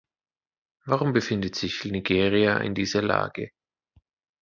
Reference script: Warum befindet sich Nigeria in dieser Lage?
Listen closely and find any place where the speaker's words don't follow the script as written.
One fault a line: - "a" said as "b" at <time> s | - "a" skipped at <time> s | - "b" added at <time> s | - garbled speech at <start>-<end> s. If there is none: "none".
none